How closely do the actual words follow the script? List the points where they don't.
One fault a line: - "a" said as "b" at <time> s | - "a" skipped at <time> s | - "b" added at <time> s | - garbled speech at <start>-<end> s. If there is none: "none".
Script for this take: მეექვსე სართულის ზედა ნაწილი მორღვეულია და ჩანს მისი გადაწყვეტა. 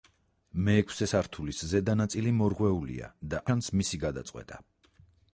none